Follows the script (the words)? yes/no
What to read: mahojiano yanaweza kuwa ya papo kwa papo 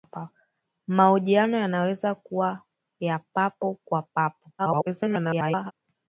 no